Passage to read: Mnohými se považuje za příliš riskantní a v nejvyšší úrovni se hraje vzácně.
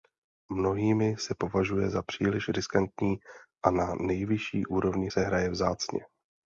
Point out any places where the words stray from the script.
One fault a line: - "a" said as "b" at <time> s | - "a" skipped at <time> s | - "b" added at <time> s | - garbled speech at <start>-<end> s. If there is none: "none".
- "v" said as "na" at 3.7 s